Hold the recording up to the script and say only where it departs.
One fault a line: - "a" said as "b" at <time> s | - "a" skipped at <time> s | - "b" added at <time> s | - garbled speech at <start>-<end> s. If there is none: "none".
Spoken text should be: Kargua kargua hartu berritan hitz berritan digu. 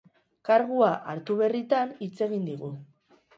- "kargua" skipped at 0.9 s
- "berritan" said as "egin" at 2.3 s